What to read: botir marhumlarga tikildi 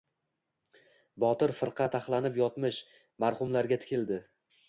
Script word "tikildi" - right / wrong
right